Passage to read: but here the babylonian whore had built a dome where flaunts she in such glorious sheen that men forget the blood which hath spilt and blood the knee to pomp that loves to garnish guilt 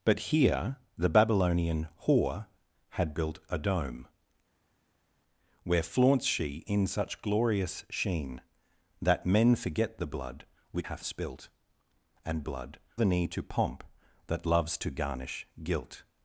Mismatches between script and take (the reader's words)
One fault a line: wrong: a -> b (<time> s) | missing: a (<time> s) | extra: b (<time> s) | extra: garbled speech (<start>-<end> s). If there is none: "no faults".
no faults